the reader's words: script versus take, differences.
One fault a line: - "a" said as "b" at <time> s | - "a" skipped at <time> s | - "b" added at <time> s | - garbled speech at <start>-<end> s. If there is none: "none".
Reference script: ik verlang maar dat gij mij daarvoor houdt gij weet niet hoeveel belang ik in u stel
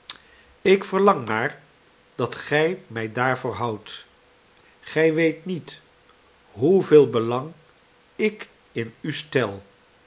none